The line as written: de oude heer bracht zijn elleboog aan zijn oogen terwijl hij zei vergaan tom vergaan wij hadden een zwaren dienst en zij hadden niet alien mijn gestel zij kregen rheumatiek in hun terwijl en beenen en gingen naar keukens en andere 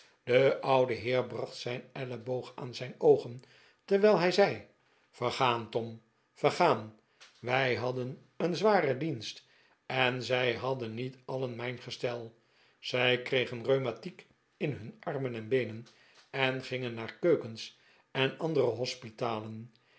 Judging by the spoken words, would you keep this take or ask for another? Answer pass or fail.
fail